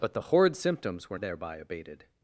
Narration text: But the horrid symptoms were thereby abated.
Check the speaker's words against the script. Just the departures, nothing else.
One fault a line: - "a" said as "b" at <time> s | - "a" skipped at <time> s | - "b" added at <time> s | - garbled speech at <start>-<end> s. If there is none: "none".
none